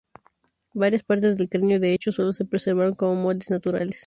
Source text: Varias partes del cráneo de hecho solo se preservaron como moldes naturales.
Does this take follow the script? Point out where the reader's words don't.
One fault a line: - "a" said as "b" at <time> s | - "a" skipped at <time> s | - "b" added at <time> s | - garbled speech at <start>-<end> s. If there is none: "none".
none